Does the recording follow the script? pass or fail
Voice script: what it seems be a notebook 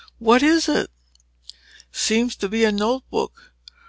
fail